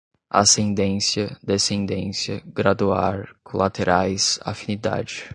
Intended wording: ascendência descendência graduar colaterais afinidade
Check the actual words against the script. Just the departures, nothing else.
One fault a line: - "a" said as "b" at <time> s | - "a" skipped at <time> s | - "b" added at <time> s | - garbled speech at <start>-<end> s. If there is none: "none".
none